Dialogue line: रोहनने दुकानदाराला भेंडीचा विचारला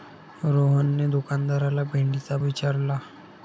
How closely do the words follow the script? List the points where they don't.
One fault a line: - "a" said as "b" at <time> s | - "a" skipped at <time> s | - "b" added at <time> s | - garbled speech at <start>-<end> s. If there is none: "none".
none